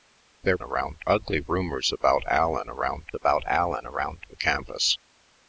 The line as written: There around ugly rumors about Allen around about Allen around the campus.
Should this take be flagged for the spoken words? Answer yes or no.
no